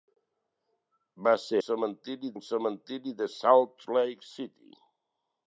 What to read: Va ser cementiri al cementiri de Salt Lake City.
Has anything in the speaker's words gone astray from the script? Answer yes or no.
no